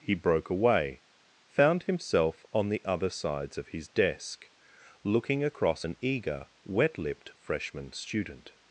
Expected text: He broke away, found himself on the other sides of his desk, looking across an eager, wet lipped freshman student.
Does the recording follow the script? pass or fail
pass